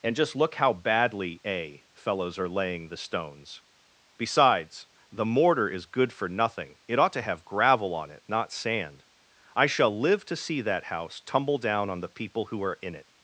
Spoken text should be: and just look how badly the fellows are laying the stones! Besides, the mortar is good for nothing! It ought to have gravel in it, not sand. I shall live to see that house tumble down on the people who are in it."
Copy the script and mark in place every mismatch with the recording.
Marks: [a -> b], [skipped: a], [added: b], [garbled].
and just look how badly [the -> a] fellows are laying the stones! Besides, the mortar is good for nothing! It ought to have gravel [in -> on] it, not sand. I shall live to see that house tumble down on the people who are in it."